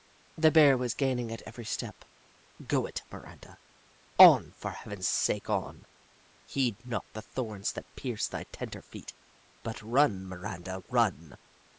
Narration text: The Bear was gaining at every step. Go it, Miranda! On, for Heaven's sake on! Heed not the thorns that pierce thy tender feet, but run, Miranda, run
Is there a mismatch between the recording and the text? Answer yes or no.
no